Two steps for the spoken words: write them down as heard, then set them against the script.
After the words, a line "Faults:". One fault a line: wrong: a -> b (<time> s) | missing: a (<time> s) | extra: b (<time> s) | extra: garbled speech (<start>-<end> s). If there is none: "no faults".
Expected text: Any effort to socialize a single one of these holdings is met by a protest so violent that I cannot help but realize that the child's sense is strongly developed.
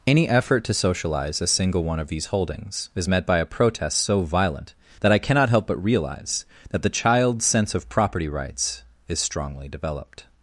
Any effort to socialize a single one of these holdings is met by a protest so violent that I cannot help but realize that the child's sense of property rights is strongly developed.
Faults:
extra: of property rights (7.8 s)